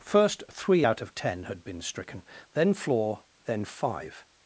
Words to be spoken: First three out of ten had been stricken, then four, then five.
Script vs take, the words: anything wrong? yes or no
yes